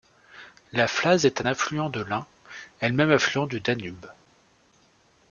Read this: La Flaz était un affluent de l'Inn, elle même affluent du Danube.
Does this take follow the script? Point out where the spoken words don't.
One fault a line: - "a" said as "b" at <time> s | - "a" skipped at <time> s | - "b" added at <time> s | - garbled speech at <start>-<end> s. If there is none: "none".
- "était" said as "est" at 1.2 s